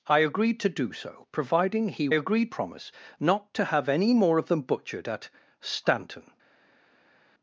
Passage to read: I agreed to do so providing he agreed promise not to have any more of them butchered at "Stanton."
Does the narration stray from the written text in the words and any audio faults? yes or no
no